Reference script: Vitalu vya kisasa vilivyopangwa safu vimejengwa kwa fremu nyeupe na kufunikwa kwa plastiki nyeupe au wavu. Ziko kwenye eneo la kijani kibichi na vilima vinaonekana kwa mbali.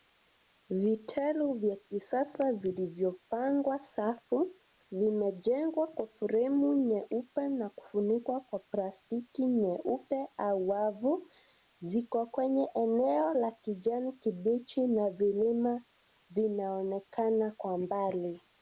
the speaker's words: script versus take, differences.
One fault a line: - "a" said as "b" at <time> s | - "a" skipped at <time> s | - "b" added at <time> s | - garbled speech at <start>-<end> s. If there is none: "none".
none